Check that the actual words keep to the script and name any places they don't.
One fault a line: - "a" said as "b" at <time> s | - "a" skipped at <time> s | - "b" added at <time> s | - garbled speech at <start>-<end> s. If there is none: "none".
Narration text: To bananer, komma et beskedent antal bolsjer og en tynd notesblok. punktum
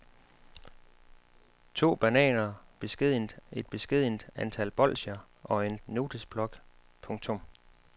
- "komma" said as "beskedent" at 2.8 s
- "tynd" skipped at 5.8 s